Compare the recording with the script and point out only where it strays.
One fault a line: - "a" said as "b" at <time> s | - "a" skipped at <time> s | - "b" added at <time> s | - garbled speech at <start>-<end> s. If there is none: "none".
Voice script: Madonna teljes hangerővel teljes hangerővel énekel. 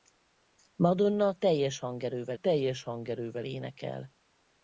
none